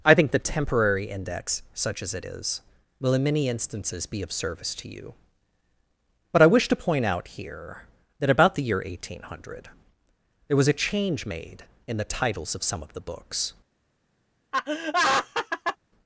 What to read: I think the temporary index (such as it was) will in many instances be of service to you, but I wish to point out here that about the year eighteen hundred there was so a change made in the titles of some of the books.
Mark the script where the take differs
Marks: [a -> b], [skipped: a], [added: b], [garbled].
I think the temporary index (such as it [was) -> is] will in many instances be of service to you, but I wish to point out here that about the year eighteen hundred there was [skipped: so] a change made in the titles of some of the books.